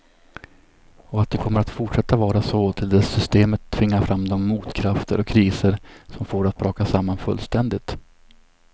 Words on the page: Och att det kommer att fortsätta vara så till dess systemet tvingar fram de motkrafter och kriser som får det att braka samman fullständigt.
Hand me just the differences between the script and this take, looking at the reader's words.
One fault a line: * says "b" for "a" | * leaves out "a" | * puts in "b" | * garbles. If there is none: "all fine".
all fine